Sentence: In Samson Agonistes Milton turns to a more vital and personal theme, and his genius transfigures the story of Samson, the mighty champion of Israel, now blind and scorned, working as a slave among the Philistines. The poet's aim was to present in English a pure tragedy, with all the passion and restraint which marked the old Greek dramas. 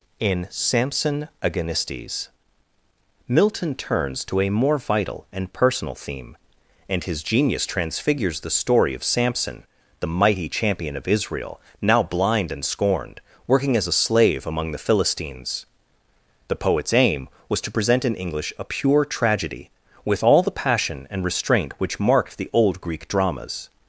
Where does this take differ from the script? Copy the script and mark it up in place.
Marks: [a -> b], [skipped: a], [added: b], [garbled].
In Samson Agonistes Milton turns to a more vital and personal theme, and his genius transfigures the story of Samson, the mighty champion of Israel, now blind and scorned, working as a slave among the Philistines. The poet's aim was to present in English a pure tragedy, with all the passion and restraint which marked the old Greek dramas.